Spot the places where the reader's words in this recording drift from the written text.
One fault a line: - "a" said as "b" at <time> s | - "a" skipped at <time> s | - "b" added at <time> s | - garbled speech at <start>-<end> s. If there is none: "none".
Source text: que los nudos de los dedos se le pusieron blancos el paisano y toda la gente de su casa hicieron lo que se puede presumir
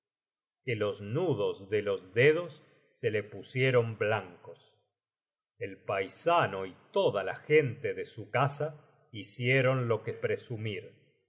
- "se puede" skipped at 10.1 s